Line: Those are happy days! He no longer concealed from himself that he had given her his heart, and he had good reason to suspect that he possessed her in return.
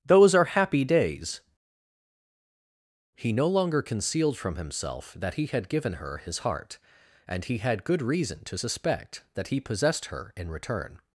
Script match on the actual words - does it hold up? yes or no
yes